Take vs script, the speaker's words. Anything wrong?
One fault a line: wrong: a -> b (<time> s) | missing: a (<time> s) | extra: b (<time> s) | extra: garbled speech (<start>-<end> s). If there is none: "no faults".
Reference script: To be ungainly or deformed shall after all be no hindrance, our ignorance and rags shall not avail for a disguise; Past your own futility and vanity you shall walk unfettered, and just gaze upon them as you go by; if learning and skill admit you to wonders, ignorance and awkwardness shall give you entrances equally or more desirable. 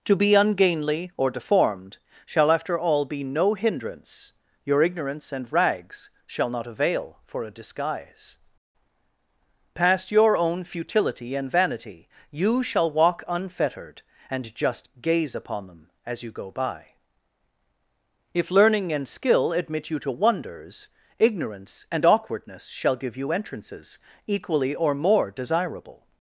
wrong: our -> your (4.7 s)